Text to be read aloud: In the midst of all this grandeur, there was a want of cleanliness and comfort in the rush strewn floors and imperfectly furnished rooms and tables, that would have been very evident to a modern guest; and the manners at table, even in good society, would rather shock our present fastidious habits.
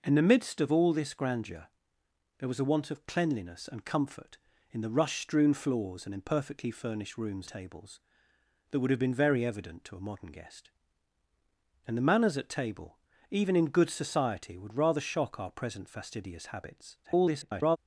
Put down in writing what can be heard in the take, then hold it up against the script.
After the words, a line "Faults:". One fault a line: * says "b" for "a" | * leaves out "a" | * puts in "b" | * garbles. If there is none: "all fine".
In the midst of all this grandeur, there was a want of cleanliness and comfort in the rush strewn floors and imperfectly furnished rooms tables, that would have been very evident to a modern guest; and the manners at table, even in good society, would rather shock our present fastidious habits. [garbled]
Faults:
* leaves out "and"
* garbles